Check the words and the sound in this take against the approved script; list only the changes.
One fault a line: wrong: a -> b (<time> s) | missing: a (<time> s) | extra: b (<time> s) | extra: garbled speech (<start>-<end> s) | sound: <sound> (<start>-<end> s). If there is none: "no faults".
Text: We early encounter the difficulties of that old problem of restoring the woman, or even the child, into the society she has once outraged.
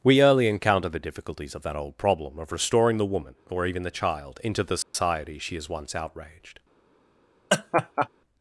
sound: dropout (4.8-4.9 s)
sound: laugh (7.5-8.1 s)